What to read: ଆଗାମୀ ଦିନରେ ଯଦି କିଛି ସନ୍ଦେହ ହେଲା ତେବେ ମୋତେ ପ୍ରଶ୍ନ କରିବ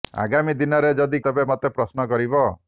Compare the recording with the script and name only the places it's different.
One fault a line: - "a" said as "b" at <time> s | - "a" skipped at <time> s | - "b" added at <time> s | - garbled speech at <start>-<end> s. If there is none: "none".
- "କିଛି ସନ୍ଦେହ ହେଲା" skipped at 1.2 s